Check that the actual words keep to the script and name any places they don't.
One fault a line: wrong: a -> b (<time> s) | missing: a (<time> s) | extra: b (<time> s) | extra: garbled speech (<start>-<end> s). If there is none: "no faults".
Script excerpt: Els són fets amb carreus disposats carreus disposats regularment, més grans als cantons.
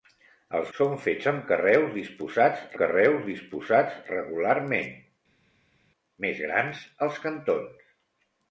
no faults